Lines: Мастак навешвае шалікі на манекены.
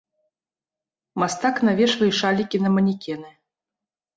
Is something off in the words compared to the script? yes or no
no